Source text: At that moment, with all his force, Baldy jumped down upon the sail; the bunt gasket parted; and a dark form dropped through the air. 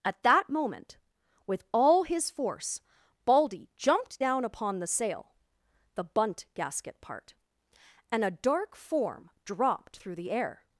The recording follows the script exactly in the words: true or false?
false